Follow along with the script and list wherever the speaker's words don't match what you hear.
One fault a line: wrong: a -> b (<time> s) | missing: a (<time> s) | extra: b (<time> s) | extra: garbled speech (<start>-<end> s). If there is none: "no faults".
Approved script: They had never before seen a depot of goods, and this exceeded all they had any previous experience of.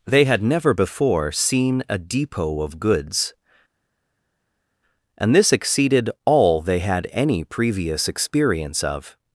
no faults